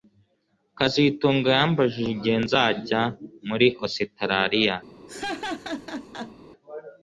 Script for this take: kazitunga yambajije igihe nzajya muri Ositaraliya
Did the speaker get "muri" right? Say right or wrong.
right